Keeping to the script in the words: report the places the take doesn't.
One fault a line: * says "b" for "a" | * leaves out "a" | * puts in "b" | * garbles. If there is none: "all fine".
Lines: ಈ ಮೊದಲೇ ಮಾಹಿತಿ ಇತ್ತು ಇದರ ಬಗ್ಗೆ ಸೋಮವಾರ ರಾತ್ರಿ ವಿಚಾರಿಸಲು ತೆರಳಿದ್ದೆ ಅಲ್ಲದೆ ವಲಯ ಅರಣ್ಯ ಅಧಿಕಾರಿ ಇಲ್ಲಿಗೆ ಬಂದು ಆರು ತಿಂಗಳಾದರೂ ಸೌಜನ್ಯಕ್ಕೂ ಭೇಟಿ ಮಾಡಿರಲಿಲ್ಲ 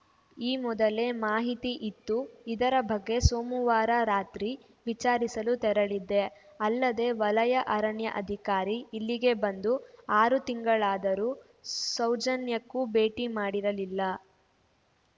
all fine